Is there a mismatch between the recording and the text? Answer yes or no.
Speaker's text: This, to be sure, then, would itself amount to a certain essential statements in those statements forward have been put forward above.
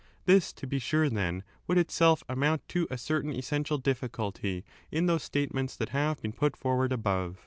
yes